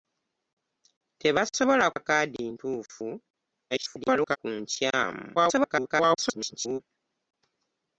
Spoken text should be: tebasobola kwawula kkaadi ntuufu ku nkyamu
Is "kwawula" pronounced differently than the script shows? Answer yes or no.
yes